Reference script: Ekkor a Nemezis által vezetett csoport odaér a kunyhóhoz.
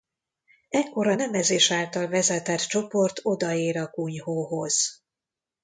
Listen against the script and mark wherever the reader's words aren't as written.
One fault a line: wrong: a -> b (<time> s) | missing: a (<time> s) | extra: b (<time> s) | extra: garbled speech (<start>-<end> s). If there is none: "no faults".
no faults